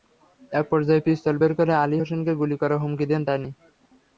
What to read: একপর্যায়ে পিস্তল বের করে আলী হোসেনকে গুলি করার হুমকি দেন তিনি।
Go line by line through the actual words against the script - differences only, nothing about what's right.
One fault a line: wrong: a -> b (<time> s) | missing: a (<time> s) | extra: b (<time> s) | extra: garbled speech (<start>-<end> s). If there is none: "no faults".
no faults